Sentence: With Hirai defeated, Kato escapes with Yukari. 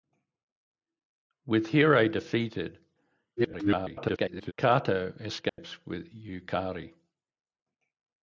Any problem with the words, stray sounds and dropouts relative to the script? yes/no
yes